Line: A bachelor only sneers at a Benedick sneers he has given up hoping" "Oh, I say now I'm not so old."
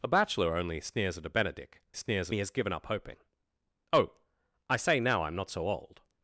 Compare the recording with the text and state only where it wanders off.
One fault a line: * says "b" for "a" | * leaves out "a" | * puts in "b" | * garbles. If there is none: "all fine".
all fine